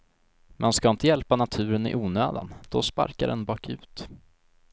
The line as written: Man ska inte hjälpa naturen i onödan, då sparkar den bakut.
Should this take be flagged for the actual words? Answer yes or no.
no